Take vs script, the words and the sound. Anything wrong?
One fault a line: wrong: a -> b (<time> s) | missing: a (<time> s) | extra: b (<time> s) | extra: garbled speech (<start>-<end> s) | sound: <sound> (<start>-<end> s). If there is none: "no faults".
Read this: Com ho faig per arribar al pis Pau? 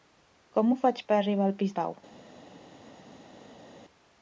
no faults